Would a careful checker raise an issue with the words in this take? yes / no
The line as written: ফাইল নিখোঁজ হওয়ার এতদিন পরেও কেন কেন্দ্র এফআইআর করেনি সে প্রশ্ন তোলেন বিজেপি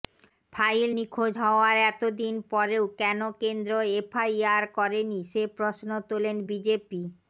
no